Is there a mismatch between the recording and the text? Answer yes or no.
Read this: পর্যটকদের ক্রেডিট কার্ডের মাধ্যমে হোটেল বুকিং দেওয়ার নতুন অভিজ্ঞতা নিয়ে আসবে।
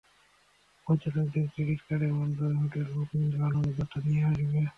yes